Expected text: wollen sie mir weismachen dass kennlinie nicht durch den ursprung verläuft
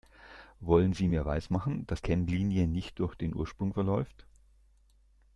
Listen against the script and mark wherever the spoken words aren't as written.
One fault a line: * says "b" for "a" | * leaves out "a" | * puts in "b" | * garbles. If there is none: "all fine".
all fine